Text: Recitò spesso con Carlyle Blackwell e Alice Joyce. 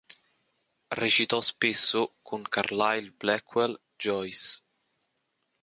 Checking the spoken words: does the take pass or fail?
fail